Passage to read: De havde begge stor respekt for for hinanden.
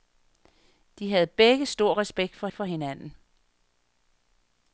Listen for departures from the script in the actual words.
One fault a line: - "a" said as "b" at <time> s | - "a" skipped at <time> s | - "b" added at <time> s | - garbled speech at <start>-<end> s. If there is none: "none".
none